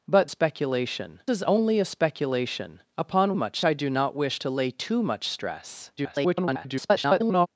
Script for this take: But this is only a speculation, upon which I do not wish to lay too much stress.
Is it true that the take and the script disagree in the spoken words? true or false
true